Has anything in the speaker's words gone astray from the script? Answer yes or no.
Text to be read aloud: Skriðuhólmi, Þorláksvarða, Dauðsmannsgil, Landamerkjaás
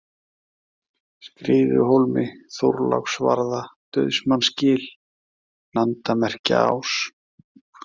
no